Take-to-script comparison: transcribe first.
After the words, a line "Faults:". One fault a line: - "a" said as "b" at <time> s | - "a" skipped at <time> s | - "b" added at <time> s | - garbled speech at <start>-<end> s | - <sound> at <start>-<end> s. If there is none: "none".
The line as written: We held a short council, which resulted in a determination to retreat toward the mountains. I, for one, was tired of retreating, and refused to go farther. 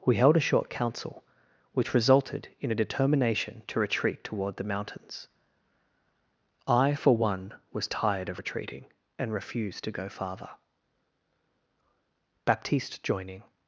We held a short council, which resulted in a determination to retreat toward the mountains. I, for one, was tired of retreating, and refused to go farther. Baptiste joining
Faults:
- "Baptiste joining" added at 12.4 s